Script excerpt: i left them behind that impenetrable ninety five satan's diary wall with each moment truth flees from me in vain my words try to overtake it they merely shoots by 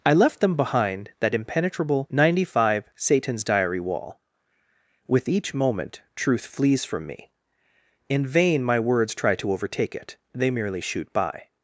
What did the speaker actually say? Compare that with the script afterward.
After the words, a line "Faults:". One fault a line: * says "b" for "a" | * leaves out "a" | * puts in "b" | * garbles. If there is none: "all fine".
i left them behind that impenetrable ninety five satan's diary wall with each moment truth flees from me in vain my words try to overtake it they merely shoot by
Faults:
* says "shoot" for "shoots"